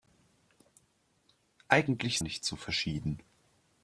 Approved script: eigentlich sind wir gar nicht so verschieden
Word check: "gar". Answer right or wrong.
wrong